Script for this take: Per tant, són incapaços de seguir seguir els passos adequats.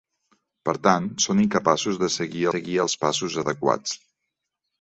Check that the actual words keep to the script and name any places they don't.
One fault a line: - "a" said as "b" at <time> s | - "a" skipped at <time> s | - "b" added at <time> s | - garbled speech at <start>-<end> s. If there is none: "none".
none